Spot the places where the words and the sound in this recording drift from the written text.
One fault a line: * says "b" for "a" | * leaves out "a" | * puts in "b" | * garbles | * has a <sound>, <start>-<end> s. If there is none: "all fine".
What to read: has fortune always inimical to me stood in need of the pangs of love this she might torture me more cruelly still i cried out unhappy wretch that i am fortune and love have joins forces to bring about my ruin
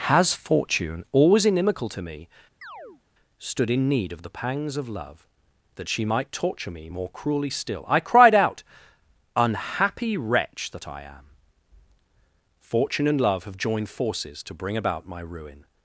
* has a chirp, 2.6-3.0 s
* says "that" for "this"
* says "joined" for "joins"